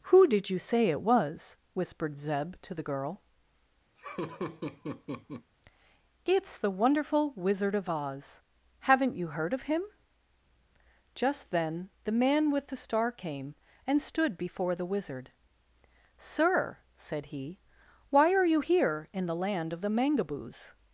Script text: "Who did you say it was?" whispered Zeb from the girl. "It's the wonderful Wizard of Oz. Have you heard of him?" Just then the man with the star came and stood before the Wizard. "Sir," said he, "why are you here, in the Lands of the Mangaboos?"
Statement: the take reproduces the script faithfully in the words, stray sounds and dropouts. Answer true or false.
false